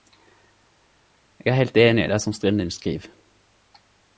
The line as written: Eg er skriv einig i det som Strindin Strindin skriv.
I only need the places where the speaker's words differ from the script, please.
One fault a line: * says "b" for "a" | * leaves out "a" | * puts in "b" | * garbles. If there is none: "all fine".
* says "heilt" for "skriv"
* leaves out "Strindin"